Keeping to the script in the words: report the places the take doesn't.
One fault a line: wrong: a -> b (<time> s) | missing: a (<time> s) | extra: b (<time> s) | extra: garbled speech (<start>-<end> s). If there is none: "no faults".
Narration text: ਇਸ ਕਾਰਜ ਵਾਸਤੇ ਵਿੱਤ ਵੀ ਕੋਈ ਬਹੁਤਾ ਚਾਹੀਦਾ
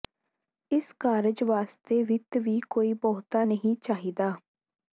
extra: ਨਹੀਂ (3.4 s)